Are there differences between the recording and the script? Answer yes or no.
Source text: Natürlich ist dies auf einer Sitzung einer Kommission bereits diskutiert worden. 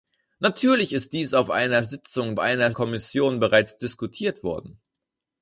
no